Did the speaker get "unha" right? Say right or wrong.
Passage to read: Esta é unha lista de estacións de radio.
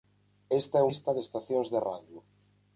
wrong